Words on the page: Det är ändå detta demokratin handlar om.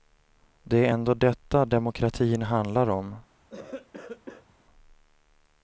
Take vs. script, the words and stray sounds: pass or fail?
fail